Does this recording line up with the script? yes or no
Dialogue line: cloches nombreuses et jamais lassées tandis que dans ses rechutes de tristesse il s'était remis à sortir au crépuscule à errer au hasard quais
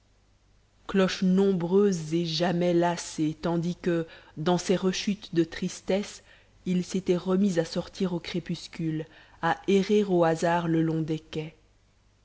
no